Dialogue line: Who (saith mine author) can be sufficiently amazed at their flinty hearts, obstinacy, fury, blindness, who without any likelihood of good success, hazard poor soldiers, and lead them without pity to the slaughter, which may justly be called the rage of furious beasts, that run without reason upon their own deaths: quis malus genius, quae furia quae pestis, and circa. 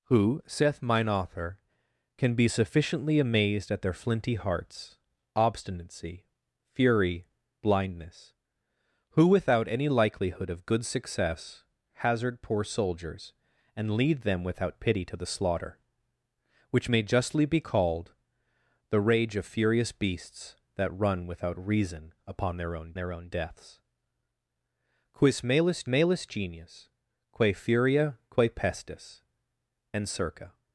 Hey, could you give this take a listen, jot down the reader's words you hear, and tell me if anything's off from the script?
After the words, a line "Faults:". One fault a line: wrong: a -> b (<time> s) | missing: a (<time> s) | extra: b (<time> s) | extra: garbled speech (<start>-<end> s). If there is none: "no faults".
Who (saith mine author) can be sufficiently amazed at their flinty hearts, obstinacy, fury, blindness, who without any likelihood of good success, hazard poor soldiers, and lead them without pity to the slaughter, which may justly be called the rage of furious beasts, that run without reason upon their own their own deaths: quis malus malus genius, quae furia quae pestis, and circa.
Faults:
extra: their own (22.9 s)
extra: malus (25.9 s)